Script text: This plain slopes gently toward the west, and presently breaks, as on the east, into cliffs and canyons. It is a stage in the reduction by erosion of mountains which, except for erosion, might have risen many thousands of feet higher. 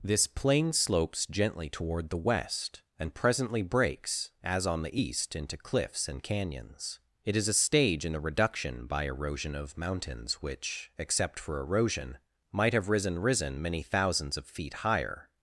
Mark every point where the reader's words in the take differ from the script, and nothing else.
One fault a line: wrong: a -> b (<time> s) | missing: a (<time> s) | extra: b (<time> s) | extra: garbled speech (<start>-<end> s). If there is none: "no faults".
extra: risen (13.2 s)